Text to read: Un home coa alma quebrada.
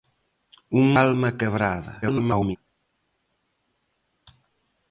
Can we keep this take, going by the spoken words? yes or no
no